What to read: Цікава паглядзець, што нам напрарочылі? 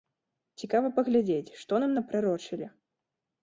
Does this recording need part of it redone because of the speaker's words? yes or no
no